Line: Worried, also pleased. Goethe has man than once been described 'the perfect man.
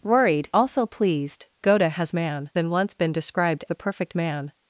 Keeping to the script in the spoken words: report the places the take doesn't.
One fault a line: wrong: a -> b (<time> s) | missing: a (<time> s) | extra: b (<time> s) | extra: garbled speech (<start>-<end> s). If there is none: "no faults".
no faults